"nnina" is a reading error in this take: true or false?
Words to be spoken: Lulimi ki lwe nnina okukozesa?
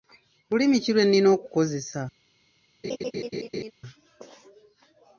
false